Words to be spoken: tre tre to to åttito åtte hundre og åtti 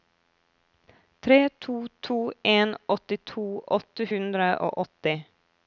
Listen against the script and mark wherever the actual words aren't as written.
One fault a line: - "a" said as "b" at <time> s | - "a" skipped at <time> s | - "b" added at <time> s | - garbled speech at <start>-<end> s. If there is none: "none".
- "tre" said as "to" at 1.5 s
- "to" said as "en" at 2.4 s